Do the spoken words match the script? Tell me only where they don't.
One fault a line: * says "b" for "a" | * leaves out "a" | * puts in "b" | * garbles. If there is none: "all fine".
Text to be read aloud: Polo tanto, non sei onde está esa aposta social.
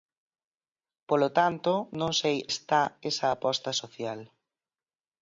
* leaves out "onde"